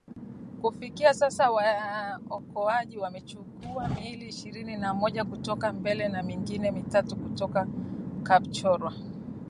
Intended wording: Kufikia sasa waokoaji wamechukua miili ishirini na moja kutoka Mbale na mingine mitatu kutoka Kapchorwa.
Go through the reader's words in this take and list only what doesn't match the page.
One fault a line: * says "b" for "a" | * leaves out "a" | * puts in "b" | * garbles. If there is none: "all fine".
all fine